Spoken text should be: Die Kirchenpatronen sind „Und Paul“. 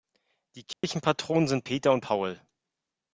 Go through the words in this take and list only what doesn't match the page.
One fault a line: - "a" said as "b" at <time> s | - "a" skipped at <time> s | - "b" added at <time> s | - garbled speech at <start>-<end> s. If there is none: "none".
- "Peter" added at 1.6 s